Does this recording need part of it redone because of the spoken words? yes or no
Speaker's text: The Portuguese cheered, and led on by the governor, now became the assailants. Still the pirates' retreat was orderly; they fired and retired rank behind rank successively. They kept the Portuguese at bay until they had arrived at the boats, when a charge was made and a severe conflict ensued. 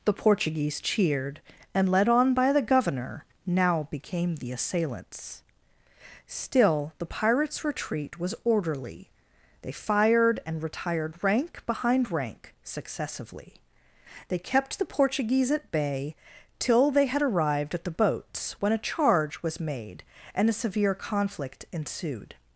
yes